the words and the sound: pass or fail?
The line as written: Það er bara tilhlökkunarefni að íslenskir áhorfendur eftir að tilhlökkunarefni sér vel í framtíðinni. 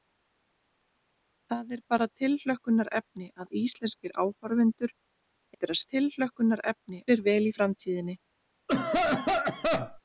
fail